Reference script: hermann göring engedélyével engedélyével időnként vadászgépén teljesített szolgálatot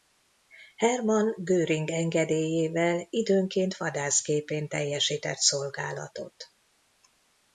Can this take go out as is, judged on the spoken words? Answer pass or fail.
fail